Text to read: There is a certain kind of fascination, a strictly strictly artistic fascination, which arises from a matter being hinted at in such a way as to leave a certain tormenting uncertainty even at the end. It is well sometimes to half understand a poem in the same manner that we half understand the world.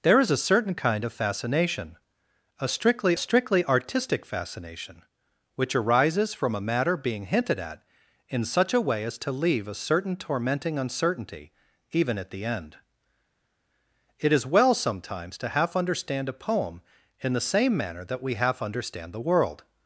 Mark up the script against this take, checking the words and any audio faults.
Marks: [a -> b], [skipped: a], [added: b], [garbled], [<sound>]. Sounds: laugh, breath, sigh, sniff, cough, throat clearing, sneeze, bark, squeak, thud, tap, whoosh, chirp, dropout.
There is a certain kind of fascination, a strictly strictly artistic fascination, which arises from a matter being hinted at in such a way as to leave a certain tormenting uncertainty even at the end. It is well sometimes to half understand a poem in the same manner that we half understand the world.